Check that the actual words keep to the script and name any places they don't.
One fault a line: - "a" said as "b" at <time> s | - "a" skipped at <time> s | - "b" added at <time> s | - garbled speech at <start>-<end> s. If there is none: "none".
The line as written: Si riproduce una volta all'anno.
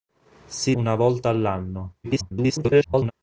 - "riproduce" skipped at 0.7 s
- garbled speech at 2.0-3.1 s